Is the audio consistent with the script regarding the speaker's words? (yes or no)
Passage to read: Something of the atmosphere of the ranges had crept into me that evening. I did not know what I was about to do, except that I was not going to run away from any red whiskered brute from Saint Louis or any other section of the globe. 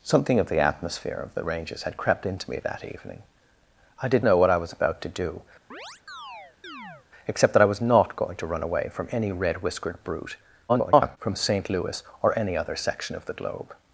no